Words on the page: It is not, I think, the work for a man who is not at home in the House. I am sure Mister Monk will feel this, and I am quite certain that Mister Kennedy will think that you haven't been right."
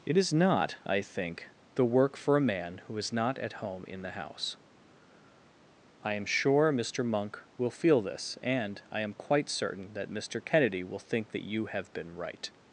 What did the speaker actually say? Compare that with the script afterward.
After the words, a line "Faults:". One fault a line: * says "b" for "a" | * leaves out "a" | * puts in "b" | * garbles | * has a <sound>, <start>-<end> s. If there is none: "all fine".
It is not, I think, the work for a man who is not at home in the House. I am sure Mister Monk will feel this, and I am quite certain that Mister Kennedy will think that you have been right."
Faults:
* says "have" for "haven't"